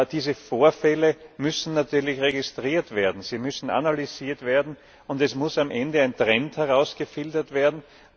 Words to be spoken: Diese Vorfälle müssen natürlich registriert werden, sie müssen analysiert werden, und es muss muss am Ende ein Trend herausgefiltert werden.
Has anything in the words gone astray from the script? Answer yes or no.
yes